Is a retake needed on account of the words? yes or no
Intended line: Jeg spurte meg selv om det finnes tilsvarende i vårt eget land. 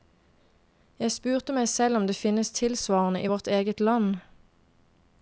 no